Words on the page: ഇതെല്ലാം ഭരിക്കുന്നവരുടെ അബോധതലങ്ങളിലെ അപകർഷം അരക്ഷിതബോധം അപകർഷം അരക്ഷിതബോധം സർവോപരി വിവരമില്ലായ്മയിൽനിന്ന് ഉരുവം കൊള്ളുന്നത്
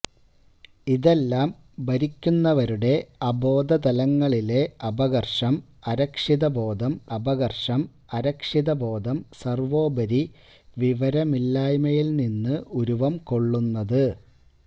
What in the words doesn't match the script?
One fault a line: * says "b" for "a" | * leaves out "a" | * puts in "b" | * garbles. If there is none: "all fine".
all fine